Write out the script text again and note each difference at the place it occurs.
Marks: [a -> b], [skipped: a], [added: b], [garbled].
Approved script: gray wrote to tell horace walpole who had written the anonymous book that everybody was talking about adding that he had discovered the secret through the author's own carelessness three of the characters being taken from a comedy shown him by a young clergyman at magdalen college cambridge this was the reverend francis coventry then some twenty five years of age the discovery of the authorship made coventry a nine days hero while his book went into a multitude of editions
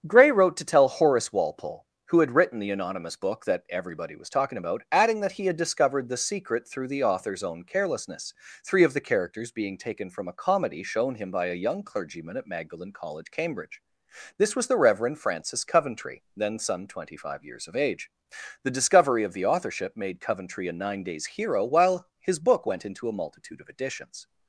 gray wrote to tell horace walpole who had written the anonymous book that everybody was talking about adding that he had discovered the secret through the author's own carelessness three of the characters being taken from a comedy shown him by a young clergyman at magdalen college cambridge this was the reverend francis coventry then some twenty five years of age the discovery of the authorship made coventry a nine days hero while his book went into a multitude of editions